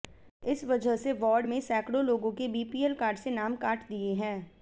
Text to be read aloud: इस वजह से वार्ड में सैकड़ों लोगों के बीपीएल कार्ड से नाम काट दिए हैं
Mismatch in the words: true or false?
false